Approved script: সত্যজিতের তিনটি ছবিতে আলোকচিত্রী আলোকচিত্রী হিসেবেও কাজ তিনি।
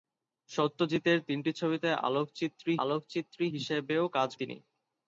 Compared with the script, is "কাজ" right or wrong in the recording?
right